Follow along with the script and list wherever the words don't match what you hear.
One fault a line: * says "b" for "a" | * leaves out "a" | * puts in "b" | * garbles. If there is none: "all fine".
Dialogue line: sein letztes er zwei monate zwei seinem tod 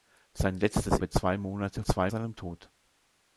all fine